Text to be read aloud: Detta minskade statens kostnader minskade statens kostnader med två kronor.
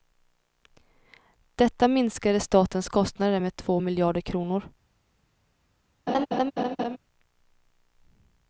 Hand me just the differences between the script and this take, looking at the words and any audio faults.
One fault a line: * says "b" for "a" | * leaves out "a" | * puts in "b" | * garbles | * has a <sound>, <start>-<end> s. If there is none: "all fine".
* leaves out "minskade statens kostnader"
* puts in "miljarder"
* has a laugh, 6.1-7.0 s